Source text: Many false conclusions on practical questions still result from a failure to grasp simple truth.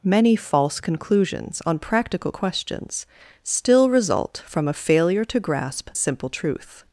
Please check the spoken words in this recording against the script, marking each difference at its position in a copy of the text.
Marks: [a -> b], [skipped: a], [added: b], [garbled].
Many false conclusions on practical questions still result from a failure to grasp simple truth.